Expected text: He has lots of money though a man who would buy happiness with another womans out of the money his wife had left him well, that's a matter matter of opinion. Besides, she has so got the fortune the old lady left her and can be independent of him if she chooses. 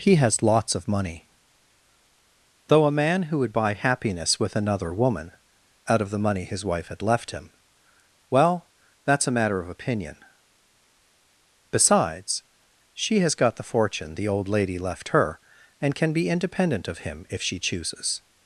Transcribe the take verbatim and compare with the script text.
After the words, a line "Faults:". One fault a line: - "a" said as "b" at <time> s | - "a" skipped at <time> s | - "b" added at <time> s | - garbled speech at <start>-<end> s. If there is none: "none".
He has lots of money though a man who would buy happiness with another woman out of the money his wife had left him well, that's a matter of opinion. Besides, she has got the fortune the old lady left her and can be independent of him if she chooses.
Faults:
- "womans" said as "woman" at 4.9 s
- "matter" skipped at 9.6 s
- "so" skipped at 13.3 s